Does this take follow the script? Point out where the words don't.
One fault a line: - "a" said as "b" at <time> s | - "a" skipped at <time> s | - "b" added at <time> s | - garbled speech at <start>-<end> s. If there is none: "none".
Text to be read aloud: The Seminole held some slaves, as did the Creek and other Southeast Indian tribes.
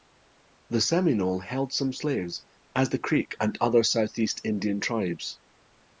- "did" skipped at 2.9 s